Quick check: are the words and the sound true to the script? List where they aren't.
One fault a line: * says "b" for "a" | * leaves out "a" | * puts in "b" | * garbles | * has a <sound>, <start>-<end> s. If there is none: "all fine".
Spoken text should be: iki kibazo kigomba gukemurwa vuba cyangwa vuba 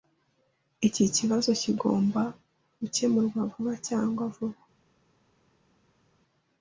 all fine